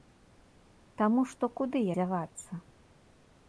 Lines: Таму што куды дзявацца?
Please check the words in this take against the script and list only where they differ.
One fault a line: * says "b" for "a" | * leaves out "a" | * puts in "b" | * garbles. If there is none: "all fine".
all fine